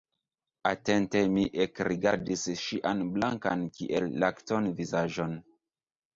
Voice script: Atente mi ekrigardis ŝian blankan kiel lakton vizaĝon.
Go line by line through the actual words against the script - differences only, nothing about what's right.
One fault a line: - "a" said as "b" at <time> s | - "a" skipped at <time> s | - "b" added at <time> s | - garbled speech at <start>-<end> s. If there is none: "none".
none